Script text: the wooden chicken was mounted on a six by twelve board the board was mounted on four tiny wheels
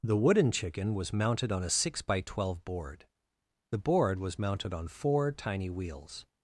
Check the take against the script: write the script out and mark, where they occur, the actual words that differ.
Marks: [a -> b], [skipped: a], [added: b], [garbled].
the wooden chicken was mounted on a six by twelve board the board was mounted on four tiny wheels